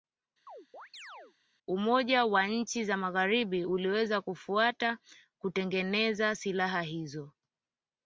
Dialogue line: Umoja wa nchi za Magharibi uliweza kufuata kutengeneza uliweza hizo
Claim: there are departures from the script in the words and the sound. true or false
true